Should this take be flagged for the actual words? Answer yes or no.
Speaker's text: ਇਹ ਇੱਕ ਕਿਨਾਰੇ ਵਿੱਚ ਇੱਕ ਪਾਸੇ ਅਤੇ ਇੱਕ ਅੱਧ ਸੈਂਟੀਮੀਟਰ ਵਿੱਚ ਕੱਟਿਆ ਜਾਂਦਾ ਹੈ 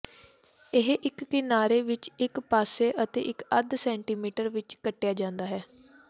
no